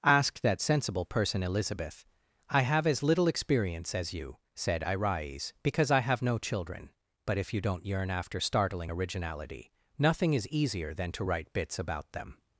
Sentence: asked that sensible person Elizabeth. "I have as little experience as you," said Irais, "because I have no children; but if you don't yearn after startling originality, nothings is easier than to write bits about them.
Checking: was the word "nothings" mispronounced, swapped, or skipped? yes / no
yes